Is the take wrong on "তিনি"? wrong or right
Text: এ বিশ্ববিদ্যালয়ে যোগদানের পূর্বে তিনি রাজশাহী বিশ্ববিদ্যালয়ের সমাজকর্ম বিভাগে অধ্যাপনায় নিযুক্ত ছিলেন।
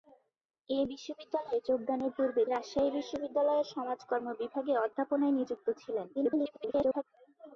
wrong